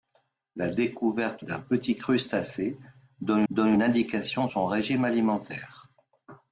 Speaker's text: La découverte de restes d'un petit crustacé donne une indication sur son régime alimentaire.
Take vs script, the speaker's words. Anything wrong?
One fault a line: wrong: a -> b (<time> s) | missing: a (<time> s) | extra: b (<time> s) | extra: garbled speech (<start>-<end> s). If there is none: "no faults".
missing: de restes (1.4 s)
extra: donne (3.5 s)
missing: sur (4.5 s)